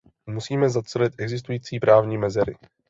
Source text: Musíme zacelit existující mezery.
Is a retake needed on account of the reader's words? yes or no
yes